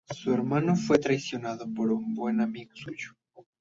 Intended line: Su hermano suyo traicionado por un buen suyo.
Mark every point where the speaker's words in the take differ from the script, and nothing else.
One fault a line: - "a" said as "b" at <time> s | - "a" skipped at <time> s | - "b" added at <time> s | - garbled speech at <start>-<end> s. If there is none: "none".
- "suyo" said as "fue" at 0.8 s
- "amigo" added at 2.4 s